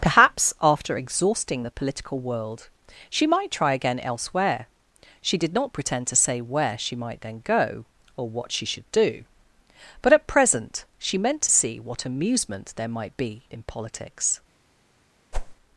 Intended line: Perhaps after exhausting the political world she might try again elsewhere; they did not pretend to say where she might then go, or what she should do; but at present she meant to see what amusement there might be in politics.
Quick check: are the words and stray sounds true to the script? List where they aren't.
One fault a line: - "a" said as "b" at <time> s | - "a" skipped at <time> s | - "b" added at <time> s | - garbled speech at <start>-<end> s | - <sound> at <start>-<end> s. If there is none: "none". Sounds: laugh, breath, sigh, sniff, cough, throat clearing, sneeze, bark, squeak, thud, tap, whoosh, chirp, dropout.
- "they" said as "she" at 5.2 s
- whoosh at 15.3-15.6 s